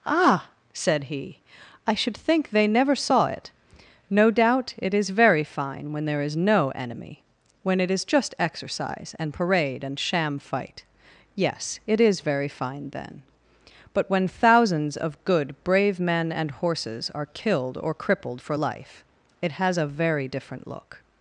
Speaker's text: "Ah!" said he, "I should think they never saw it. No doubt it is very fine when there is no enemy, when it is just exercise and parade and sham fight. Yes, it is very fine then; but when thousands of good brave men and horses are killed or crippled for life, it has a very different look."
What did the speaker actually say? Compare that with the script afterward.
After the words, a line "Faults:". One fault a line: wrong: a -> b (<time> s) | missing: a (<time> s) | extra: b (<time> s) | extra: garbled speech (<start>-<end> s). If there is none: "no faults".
"Ah!" said he, "I should think they never saw it. No doubt it is very fine when there is no enemy, when it is just exercise and parade and sham fight. Yes, it is very fine then; but when thousands of good brave men and horses are killed or crippled for life, it has a very different look."
Faults:
no faults